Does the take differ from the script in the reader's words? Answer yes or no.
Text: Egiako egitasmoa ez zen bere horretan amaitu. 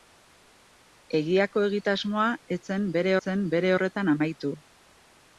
yes